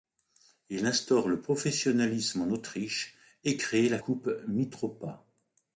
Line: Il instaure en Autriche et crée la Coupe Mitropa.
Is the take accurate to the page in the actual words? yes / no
no